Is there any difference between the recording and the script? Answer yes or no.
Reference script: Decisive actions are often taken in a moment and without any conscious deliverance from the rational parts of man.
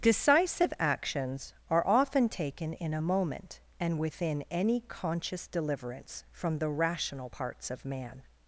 yes